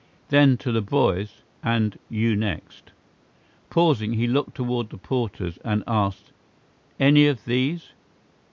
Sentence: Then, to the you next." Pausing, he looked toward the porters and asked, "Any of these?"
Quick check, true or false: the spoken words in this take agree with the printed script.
false